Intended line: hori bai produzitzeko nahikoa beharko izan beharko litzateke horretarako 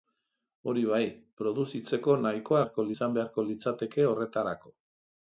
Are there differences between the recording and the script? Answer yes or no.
no